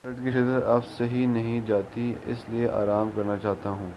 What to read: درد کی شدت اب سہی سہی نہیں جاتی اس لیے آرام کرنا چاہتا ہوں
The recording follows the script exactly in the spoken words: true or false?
false